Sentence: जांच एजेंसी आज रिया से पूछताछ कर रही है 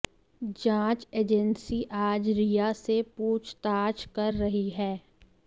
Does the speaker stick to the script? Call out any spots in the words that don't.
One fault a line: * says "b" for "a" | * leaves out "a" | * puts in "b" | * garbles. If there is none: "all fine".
all fine